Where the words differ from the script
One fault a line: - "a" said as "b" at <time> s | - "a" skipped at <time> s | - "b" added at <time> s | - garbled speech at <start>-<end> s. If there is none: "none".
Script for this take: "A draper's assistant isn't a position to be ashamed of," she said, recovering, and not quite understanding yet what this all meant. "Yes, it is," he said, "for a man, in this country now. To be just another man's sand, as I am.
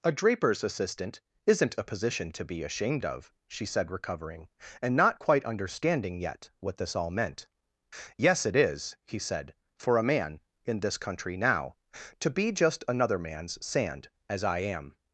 none